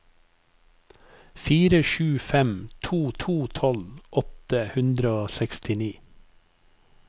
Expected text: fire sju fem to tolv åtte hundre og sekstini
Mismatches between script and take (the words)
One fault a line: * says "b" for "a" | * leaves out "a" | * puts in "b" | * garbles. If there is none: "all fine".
* puts in "to"